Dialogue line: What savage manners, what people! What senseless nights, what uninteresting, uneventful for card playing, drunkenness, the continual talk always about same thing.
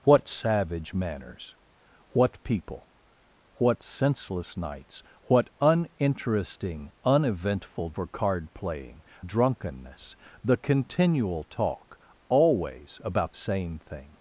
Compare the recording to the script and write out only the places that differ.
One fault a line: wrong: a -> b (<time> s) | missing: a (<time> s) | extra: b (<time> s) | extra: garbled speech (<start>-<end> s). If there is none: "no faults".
no faults